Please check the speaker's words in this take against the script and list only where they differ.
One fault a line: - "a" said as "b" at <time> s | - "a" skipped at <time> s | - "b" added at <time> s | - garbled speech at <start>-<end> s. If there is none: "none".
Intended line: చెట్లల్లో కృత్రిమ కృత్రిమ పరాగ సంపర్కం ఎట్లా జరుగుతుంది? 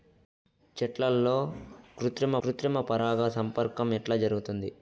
none